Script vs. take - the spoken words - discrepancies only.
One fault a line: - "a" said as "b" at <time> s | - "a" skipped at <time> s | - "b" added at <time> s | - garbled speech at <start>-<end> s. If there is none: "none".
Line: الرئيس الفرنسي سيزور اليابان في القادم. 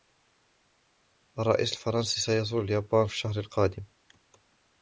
- "الشهر" added at 3.1 s